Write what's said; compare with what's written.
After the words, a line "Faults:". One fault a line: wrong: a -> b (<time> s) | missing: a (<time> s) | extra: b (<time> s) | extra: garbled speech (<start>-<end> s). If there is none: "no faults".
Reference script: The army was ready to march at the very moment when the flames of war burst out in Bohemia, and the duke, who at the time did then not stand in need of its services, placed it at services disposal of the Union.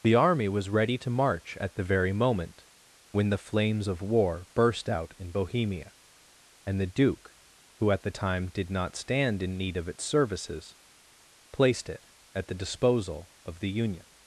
The army was ready to march at the very moment when the flames of war burst out in Bohemia, and the duke, who at the time did not stand in need of its services, placed it at the disposal of the Union.
Faults:
missing: then (8.7 s)
wrong: services -> the (12.5 s)